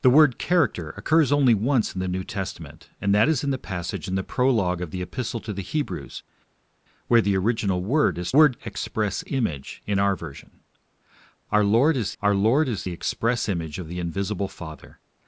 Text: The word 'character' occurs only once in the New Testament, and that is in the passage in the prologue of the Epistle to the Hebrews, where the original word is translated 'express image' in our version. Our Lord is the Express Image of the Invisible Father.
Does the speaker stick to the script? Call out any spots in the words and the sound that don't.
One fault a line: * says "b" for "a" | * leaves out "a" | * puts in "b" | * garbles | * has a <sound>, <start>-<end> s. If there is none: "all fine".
* says "word" for "translated"
* puts in "our Lord is"